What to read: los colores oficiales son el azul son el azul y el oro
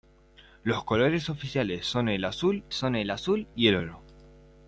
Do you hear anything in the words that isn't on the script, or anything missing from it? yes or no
no